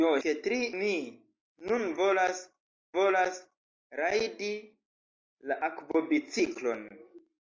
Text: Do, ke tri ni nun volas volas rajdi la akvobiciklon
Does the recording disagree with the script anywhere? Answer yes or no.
no